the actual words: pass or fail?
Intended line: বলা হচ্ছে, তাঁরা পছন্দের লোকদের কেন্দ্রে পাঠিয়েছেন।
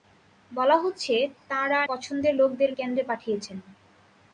pass